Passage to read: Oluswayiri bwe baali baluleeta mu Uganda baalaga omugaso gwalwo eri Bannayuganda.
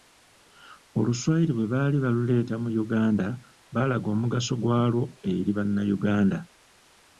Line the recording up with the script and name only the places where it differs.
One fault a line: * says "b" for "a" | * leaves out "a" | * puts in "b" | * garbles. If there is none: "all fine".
all fine